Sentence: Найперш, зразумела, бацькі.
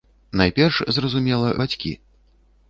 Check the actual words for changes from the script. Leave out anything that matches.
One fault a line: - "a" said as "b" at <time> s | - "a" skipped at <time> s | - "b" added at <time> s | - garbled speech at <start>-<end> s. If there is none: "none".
none